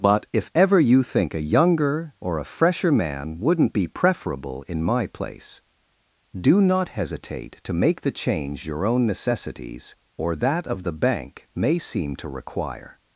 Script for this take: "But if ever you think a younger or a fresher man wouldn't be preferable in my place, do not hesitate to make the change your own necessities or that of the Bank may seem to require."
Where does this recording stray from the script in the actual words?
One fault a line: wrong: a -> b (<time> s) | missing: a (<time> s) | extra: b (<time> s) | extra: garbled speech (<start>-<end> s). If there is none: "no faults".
no faults